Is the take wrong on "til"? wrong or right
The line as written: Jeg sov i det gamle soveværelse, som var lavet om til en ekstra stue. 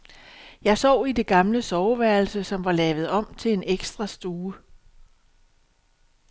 right